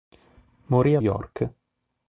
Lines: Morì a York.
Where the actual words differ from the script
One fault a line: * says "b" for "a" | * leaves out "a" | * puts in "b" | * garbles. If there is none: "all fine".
all fine